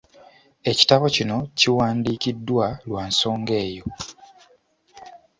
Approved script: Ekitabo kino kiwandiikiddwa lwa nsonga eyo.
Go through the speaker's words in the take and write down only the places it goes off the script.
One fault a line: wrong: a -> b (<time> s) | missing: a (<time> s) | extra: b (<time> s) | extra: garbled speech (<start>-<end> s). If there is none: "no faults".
no faults